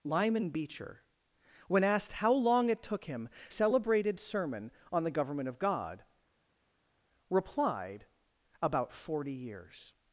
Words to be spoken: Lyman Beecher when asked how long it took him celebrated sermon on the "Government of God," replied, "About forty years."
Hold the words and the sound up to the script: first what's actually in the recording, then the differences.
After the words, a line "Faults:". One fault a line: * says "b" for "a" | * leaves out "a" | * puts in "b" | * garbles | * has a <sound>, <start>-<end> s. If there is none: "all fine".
Lyman Beecher when asked how long it took him celebrated sermon on the "Government of God," replied, "About forty years."
Faults:
all fine